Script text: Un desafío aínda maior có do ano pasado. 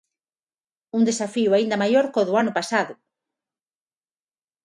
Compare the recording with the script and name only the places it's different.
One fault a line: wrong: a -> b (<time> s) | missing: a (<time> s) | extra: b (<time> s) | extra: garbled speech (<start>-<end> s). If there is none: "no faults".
no faults